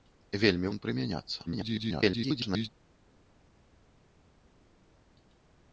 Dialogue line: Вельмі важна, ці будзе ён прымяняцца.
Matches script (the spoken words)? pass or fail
fail